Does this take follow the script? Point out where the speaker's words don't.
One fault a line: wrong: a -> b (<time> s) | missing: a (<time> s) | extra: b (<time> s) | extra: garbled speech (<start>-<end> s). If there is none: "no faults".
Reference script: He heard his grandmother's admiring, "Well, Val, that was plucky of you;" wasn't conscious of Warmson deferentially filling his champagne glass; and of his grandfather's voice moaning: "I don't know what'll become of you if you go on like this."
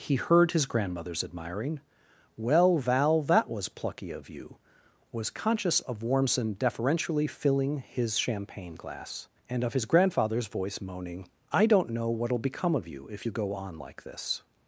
wrong: wasn't -> was (5.1 s)